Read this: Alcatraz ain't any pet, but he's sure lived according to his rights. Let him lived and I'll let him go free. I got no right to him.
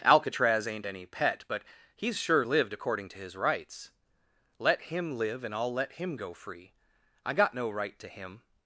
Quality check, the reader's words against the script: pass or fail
fail